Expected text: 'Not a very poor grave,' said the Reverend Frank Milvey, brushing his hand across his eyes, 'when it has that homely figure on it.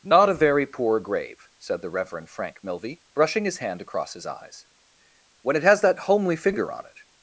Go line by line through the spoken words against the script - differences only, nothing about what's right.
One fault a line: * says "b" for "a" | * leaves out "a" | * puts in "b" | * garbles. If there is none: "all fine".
all fine